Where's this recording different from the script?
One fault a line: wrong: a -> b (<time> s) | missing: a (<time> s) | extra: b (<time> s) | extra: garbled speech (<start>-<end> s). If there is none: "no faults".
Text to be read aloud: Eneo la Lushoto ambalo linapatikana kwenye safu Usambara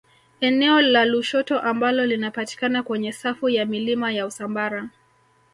extra: ya milima ya (3.5 s)